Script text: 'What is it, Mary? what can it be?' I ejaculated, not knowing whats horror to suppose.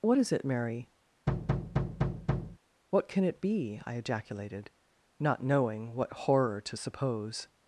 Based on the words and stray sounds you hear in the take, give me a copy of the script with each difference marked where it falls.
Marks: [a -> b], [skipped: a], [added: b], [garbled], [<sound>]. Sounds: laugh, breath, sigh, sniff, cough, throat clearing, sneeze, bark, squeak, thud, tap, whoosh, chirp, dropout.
'What is it, Mary? [thud] what can it be?' I ejaculated, not knowing [whats -> what] horror to suppose.